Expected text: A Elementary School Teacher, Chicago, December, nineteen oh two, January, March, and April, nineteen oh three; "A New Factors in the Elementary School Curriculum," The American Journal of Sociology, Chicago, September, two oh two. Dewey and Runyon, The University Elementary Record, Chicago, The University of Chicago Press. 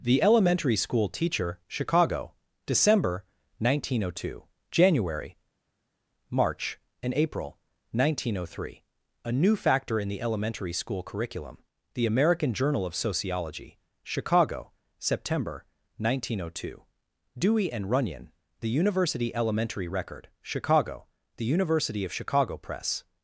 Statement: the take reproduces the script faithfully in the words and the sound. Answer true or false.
false